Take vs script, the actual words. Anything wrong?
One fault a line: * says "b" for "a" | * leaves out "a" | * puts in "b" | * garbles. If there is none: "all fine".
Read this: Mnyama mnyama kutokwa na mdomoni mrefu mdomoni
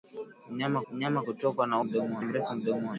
all fine